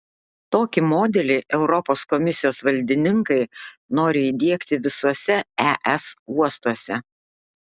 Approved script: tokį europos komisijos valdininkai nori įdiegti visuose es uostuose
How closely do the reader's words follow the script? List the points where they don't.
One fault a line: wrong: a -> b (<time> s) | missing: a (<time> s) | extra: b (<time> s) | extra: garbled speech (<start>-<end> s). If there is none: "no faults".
extra: modelį (0.9 s)